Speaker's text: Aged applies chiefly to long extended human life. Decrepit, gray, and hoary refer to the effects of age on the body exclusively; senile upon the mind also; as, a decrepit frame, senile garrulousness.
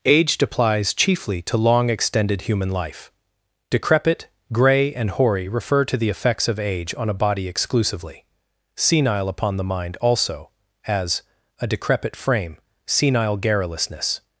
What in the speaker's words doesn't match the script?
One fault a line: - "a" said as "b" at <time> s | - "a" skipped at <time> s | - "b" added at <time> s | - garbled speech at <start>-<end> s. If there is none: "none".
- "the" said as "a" at 7.1 s